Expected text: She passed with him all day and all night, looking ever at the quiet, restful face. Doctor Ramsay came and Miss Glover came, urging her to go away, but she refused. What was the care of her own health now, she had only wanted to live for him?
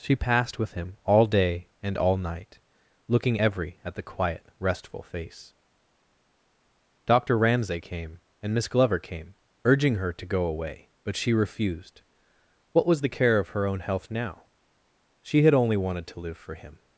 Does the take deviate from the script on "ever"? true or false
true